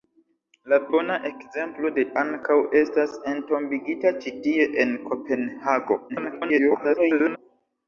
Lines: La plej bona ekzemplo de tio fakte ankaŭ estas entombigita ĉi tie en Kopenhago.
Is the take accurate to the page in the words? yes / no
no